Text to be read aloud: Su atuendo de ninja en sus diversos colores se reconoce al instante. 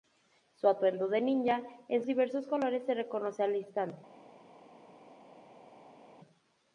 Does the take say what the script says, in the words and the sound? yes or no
no